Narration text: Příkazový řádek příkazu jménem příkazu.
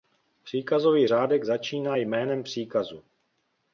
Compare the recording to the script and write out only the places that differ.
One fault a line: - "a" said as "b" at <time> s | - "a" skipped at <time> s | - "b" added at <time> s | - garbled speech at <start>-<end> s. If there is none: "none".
- "příkazu" said as "začíná" at 1.4 s